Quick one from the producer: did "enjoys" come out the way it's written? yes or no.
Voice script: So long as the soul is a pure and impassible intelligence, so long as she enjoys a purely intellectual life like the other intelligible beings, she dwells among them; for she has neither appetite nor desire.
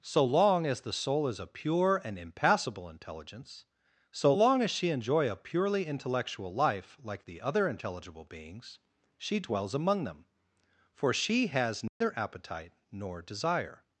no